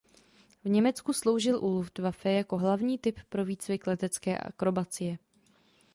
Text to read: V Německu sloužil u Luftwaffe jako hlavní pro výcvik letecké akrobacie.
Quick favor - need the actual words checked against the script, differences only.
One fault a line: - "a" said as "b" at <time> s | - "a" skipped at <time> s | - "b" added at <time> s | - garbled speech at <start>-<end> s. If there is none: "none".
- "typ" added at 3.0 s